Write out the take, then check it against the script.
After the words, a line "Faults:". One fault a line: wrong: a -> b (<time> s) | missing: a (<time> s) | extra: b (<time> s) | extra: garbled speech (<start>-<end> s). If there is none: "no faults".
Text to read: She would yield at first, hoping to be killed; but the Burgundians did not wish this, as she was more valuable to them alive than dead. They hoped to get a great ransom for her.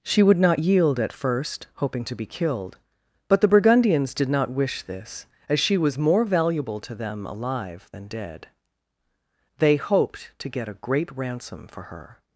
She would not yield at first, hoping to be killed; but the Burgundians did not wish this, as she was more valuable to them alive than dead. They hoped to get a great ransom for her.
Faults:
extra: not (0.4 s)